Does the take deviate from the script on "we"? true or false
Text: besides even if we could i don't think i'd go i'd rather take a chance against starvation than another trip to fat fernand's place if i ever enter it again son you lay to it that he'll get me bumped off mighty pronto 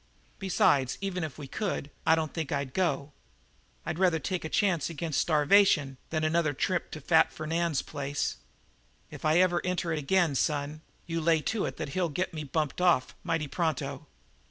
false